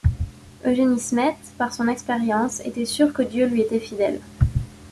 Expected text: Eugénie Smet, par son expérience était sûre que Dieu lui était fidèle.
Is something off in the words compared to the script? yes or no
no